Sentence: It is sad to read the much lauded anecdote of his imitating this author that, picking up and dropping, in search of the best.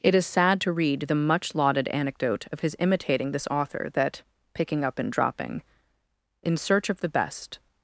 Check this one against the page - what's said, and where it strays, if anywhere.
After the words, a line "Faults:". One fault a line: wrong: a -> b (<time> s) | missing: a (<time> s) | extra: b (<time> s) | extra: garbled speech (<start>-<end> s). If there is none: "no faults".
It is sad to read the much lauded anecdote of his imitating this author that, picking up and dropping, in search of the best.
Faults:
no faults